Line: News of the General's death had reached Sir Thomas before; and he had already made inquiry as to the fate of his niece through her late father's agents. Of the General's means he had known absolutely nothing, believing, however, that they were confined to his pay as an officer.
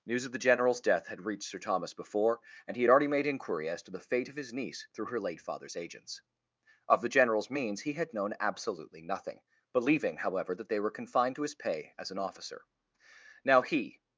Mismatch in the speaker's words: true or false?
true